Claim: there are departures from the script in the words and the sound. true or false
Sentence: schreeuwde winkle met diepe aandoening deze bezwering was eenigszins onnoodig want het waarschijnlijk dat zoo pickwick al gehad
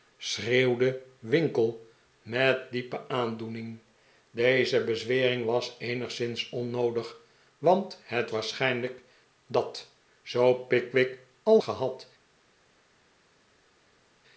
false